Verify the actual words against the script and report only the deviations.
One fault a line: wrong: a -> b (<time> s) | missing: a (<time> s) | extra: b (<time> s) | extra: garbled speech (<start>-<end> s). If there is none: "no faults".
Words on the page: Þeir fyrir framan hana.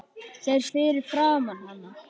no faults